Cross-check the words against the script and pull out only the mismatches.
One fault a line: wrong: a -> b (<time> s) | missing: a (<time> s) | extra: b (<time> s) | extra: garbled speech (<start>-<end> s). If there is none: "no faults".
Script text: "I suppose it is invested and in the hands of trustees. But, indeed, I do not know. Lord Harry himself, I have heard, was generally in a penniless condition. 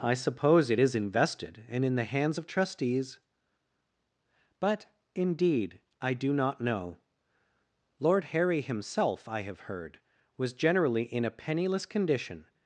no faults